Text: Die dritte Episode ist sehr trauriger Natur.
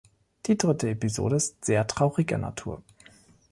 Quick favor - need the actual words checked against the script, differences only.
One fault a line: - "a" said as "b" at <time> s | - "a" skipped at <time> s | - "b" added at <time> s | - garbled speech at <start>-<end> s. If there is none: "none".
none